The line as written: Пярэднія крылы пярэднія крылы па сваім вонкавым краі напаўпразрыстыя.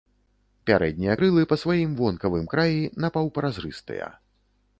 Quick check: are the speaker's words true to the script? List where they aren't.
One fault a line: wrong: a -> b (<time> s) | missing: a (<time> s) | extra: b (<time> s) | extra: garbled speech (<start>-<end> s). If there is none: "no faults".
missing: пярэднія крылы (1.5 s)